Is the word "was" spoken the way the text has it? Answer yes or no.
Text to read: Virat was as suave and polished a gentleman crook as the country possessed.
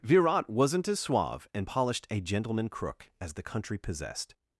no